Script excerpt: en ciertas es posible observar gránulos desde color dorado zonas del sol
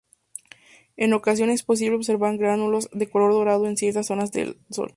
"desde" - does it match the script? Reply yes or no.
no